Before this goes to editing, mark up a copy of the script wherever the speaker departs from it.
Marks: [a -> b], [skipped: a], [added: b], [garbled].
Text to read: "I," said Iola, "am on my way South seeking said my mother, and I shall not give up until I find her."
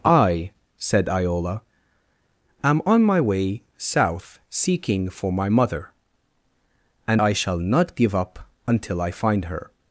"I," said Iola, "am on my way South seeking [said -> for] my mother, and I shall not give up until I find her."